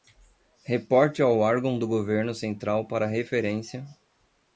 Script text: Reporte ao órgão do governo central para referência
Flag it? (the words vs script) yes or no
no